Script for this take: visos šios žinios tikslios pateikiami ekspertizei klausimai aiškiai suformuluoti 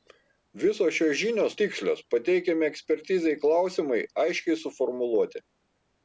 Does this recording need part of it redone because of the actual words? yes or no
no